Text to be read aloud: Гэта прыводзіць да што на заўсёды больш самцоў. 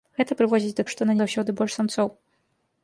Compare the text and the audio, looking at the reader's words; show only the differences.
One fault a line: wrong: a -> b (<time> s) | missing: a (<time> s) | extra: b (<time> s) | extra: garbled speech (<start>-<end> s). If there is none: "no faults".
no faults